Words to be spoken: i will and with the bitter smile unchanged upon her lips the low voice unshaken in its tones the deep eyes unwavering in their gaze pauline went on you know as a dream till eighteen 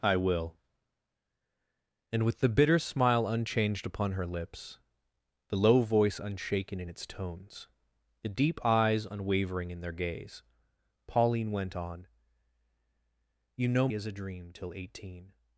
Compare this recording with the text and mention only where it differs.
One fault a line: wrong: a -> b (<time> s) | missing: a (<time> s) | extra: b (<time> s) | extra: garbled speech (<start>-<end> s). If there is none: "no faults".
no faults